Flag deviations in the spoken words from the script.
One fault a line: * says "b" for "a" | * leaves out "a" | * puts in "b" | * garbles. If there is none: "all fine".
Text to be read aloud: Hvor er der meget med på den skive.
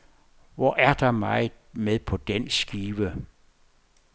all fine